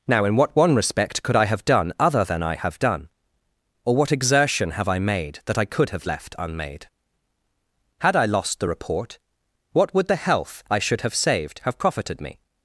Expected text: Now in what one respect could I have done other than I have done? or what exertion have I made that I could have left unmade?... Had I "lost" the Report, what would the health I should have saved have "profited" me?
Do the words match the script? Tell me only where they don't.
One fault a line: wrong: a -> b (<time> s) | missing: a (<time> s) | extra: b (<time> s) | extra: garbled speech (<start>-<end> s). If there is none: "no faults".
no faults